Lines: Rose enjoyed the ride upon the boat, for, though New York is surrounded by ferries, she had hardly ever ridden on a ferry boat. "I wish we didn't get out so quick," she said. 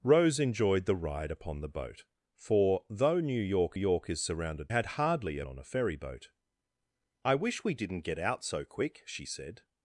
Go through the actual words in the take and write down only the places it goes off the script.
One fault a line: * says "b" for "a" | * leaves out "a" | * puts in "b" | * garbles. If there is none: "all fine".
* puts in "York"
* leaves out "by ferries she"
* leaves out "ever ridden"